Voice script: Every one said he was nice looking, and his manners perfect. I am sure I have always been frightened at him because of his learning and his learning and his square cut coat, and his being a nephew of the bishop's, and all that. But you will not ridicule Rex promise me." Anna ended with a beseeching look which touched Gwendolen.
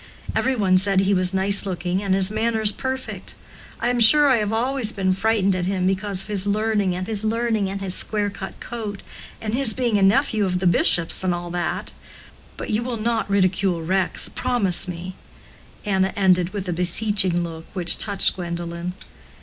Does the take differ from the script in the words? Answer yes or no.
no